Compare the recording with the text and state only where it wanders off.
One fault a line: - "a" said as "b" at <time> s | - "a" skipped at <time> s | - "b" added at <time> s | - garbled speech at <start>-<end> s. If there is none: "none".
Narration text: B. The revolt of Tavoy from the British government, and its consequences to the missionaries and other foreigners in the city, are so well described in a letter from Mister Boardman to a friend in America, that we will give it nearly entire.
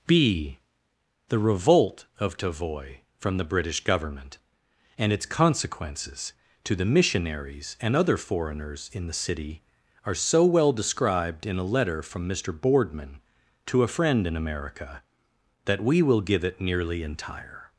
none